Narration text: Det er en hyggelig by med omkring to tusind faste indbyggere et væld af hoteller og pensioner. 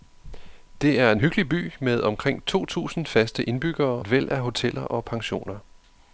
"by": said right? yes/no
yes